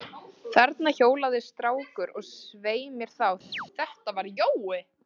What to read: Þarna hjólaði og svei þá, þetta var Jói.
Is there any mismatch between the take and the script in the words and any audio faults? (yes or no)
yes